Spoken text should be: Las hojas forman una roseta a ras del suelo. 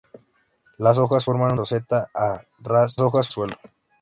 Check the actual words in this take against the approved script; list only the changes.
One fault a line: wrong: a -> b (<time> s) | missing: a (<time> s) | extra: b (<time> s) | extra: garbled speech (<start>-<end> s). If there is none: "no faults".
missing: una (1.5 s)
wrong: del -> hojas (3.0 s)